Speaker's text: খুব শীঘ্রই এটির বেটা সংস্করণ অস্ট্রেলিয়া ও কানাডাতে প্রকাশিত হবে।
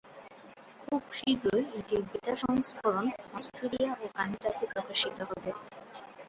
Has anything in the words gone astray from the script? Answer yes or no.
no